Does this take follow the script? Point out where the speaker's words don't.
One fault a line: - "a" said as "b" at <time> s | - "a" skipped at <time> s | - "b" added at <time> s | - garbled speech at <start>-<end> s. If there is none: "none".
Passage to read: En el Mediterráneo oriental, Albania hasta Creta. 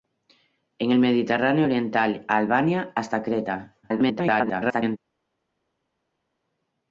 - garbled speech at 3.8-5.0 s